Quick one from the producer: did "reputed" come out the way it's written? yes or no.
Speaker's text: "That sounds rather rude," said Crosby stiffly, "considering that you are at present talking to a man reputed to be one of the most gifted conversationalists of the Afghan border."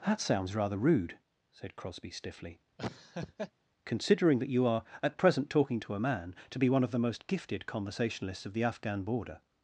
no